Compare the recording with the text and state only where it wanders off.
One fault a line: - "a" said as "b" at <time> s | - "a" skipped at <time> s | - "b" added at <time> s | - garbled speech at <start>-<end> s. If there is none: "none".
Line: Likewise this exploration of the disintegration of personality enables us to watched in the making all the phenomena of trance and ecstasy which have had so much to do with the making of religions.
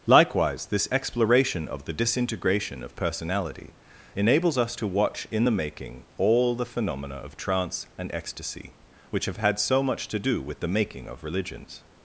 - "watched" said as "watch" at 4.9 s